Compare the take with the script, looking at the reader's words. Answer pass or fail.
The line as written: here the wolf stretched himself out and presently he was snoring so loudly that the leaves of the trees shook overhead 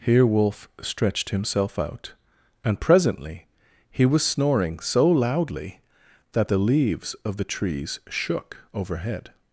fail